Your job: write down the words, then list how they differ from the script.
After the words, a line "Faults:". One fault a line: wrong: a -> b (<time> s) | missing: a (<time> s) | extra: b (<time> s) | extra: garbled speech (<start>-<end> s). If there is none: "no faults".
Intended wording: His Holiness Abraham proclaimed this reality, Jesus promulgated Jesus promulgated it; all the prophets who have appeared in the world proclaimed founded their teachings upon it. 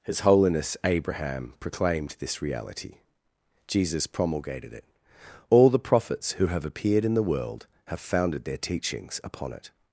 His Holiness Abraham proclaimed this reality, Jesus promulgated it; all the prophets who have appeared in the world have founded their teachings upon it.
Faults:
missing: Jesus promulgated (4.7 s)
wrong: proclaimed -> have (7.9 s)